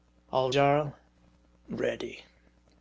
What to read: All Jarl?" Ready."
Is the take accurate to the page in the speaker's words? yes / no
yes